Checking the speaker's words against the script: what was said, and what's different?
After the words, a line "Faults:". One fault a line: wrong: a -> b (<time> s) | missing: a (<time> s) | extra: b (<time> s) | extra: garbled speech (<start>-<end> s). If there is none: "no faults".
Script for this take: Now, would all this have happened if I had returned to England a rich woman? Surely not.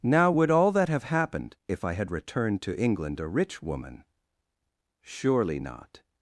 Now, would all that have happened if I had returned to England a rich woman? Surely not.
Faults:
wrong: this -> that (0.7 s)